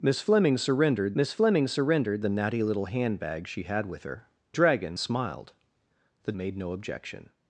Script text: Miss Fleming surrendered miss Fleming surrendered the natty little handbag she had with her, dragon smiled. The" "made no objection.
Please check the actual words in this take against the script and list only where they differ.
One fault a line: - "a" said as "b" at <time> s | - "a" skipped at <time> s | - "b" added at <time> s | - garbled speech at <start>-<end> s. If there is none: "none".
none